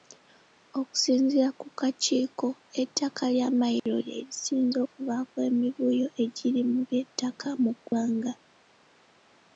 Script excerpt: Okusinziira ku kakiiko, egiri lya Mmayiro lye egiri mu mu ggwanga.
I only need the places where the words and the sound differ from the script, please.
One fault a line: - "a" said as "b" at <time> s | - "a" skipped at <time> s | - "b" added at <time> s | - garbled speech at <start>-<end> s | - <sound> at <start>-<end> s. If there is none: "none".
- "egiri" said as "ettaka" at 2.8 s
- dropout at 3.8-3.9 s
- "lisinze okuvaako emivuyo" added at 4.3 s
- "by'ettaka" added at 6.9 s
- dropout at 7.9-7.9 s